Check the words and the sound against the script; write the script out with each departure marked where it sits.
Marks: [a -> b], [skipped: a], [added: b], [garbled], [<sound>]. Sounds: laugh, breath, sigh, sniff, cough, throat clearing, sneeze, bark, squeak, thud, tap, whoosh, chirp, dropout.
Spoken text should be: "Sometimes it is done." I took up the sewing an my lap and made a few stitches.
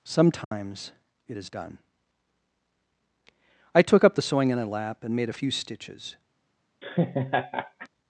"Sometimes [dropout] it is done." I took up the sewing [an my -> in a] lap and made a few stitches. [laugh]